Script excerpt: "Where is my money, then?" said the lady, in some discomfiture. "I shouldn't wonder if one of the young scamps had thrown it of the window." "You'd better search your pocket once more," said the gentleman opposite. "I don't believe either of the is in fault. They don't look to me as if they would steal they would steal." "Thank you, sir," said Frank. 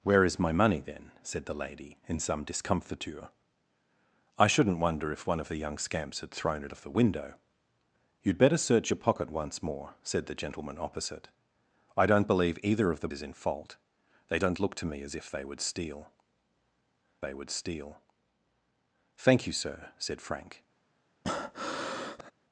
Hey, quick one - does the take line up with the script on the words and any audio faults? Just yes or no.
no